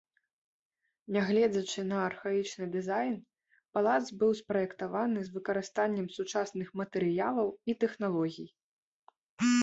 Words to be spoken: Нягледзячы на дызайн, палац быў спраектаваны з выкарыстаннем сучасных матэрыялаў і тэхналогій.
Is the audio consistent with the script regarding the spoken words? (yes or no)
no